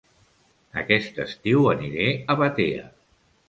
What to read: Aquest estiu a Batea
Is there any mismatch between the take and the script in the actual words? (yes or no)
yes